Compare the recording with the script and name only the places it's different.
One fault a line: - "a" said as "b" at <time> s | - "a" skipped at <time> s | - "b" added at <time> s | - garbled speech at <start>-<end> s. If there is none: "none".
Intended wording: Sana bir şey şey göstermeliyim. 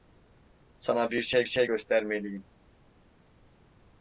none